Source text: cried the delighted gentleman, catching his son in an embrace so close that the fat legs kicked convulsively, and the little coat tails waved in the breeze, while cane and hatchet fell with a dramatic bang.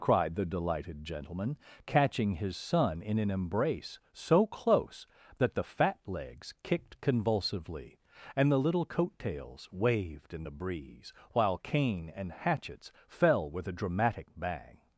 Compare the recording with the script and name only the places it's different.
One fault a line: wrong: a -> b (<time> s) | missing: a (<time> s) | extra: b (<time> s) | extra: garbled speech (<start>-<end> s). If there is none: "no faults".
wrong: hatchet -> hatchets (12.3 s)